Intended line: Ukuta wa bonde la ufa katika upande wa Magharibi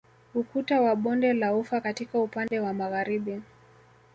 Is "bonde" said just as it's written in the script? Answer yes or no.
yes